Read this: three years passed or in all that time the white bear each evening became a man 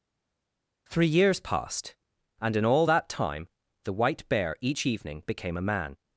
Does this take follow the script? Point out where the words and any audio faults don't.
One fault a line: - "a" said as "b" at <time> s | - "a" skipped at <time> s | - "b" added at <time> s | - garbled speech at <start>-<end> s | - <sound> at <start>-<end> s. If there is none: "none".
- "or" said as "and" at 2.4 s